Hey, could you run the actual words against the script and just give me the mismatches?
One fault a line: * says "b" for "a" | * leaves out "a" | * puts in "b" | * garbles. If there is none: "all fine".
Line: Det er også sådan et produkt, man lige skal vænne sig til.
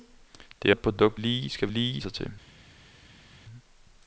* leaves out "også sådan"
* leaves out "man"
* says "lige" for "vænne"